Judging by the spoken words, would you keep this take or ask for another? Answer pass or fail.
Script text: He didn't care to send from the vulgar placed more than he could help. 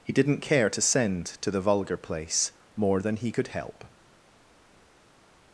fail